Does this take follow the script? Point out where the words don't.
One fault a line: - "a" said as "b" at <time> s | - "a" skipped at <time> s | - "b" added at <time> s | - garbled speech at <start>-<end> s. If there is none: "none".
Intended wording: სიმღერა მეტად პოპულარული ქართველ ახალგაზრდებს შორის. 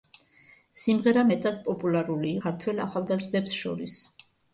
none